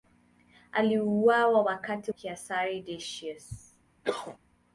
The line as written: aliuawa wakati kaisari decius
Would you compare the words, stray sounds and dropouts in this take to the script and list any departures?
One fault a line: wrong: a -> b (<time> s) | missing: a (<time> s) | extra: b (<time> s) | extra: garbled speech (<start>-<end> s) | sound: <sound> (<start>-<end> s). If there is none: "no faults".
sound: cough (4.0-4.4 s)